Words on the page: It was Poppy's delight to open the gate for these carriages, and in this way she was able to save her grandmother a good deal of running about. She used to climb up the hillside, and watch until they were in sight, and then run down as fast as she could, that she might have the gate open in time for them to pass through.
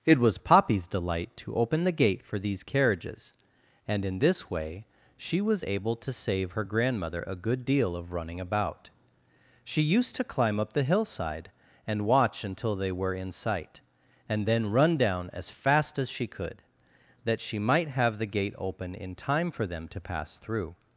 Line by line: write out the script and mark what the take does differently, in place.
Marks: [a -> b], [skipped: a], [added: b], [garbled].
It was Poppy's delight to open the gate for these carriages, and in this way she was able to save her grandmother a good deal of running about. She used to climb up the hillside, and watch until they were in sight, and then run down as fast as she could, that she might have the gate open in time for them to pass through.